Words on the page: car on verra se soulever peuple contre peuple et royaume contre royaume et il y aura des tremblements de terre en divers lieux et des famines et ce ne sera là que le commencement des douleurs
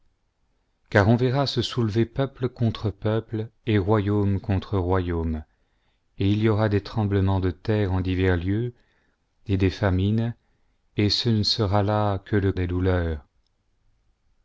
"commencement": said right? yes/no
no